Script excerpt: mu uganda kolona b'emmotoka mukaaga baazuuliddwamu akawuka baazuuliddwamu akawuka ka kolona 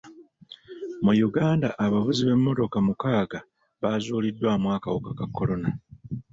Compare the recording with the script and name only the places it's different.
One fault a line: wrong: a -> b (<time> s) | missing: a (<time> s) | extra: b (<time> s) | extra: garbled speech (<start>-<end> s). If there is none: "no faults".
wrong: kolona -> abavuzi (1.9 s)
missing: baazuuliddwamu akawuka (5.1 s)